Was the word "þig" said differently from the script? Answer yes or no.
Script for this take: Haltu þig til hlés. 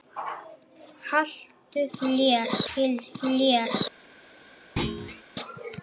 yes